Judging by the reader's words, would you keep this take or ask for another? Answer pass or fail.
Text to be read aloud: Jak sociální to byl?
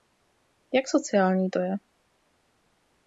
fail